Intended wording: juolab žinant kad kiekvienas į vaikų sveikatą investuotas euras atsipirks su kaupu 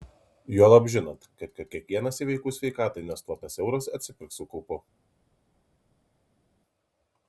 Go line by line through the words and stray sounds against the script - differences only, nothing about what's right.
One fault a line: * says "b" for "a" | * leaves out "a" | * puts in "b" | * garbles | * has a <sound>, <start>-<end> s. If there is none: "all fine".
* puts in "kad"